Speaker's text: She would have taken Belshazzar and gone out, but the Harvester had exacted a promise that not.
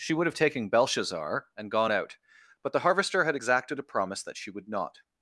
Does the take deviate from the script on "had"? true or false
false